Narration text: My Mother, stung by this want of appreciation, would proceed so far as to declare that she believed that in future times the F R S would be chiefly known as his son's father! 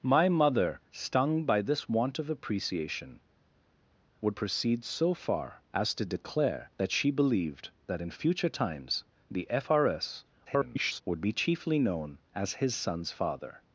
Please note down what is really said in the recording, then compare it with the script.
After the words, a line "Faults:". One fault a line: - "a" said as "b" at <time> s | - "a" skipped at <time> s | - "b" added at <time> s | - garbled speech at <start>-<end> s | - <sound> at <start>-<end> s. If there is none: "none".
My Mother, stung by this want of appreciation, would proceed so far as to declare that she believed that in future times the F R S [garbled] would be chiefly known as his son's father!
Faults:
- garbled speech at 10.5-11.0 s